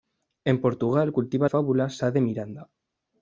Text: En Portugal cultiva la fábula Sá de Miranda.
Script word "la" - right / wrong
wrong